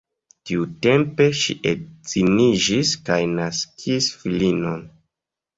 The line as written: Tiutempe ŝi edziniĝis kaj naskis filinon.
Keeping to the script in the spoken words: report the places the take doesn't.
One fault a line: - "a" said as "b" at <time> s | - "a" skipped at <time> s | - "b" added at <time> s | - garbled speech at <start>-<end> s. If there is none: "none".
none